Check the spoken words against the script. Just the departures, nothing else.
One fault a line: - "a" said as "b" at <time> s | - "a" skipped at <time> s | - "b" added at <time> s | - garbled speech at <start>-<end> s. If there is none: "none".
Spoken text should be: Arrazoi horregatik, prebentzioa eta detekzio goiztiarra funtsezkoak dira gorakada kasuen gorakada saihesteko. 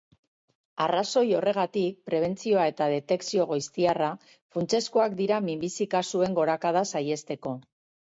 - "gorakada" said as "minbizi" at 5.5 s